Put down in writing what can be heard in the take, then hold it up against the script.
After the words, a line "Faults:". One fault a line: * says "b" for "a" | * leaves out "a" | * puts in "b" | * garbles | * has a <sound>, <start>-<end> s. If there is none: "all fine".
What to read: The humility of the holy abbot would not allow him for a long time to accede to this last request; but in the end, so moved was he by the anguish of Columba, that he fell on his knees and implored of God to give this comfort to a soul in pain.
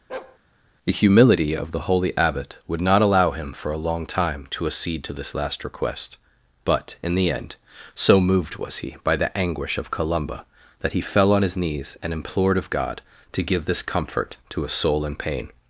The humility of the holy abbot would not allow him for a long time to accede to this last request; but in the end, so moved was he by the anguish of Columba, that he fell on his knees and implored of God to give this comfort to a soul in pain.
Faults:
* has a bark, 0.1-0.4 s